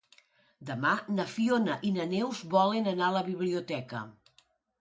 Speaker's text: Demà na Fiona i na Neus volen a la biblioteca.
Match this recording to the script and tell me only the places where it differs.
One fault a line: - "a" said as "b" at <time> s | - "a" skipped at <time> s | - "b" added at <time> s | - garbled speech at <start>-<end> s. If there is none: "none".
- "anar" added at 2.9 s